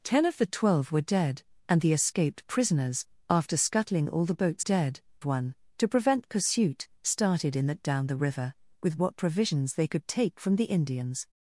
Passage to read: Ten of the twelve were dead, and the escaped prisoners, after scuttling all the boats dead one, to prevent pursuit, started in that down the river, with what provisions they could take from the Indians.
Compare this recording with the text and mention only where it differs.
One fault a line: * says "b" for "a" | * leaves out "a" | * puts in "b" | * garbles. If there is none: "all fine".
all fine